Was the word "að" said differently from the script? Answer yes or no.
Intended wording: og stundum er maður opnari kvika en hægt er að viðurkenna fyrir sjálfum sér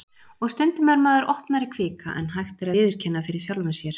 yes